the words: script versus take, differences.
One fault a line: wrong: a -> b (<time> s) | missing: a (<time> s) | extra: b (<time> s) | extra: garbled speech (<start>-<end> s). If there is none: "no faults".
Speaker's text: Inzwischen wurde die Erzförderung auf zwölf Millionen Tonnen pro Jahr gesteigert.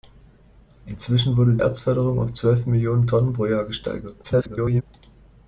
missing: die (1.6 s)
extra: garbled speech (4.2-4.8 s)